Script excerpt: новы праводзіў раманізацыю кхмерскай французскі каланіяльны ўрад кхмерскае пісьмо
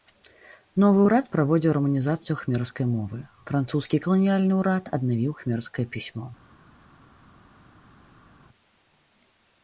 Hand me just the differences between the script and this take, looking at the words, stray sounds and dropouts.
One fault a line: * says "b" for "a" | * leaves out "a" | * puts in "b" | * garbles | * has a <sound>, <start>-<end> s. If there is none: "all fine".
* puts in "ўрад"
* puts in "мовы"
* puts in "аднавіў"